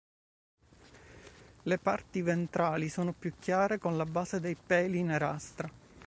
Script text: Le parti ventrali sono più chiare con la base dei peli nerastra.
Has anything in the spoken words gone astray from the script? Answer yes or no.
no